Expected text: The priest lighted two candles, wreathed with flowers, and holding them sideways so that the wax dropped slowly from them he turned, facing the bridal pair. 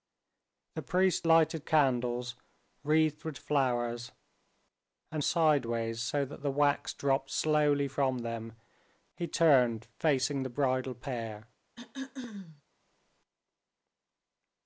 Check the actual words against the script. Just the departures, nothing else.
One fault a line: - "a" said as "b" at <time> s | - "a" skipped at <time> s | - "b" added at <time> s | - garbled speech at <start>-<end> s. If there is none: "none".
- "two" skipped at 1.7 s
- "holding them" skipped at 5.2 s